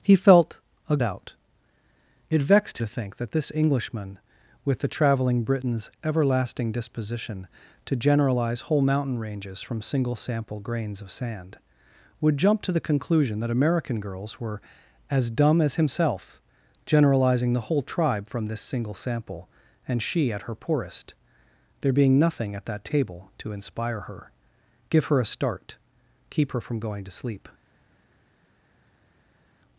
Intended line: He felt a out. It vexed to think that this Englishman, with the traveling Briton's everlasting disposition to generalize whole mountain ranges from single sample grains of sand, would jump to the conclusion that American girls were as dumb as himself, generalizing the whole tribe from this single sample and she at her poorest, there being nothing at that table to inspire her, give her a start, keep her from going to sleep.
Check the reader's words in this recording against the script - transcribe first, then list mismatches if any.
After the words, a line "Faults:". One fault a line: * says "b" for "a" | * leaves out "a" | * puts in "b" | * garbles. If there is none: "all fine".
He felt a out. It vexed to think that this Englishman, with the traveling Briton's everlasting disposition to generalize whole mountain ranges from single sample grains of sand, would jump to the conclusion that American girls were as dumb as himself, generalizing the whole tribe from this single sample and she at her poorest, there being nothing at that table to inspire her, give her a start, keep her from going to sleep.
Faults:
all fine